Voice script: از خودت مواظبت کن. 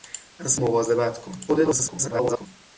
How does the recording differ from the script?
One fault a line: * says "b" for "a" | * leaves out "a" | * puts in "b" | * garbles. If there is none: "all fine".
* leaves out "خودت"
* garbles